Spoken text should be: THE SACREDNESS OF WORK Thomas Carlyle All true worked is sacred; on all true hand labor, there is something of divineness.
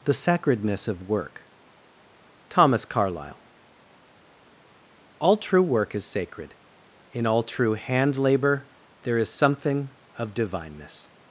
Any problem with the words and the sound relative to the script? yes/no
yes